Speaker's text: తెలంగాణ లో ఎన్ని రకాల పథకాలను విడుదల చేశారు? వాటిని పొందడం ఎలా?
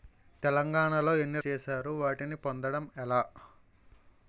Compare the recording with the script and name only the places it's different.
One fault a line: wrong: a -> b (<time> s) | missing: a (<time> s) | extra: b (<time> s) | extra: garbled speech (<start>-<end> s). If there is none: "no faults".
missing: రకాల పథకాలను విడుదల (1.4 s)